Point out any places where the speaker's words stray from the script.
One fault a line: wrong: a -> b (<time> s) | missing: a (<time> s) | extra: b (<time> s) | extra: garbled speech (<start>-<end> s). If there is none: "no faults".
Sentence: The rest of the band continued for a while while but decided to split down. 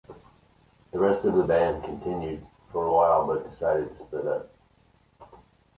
missing: while (3.3 s)
wrong: down -> up (4.3 s)